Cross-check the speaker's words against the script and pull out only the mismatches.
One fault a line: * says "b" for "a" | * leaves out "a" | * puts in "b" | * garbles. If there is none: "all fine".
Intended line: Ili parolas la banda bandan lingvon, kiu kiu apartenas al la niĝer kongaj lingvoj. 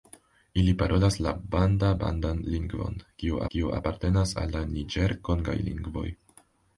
all fine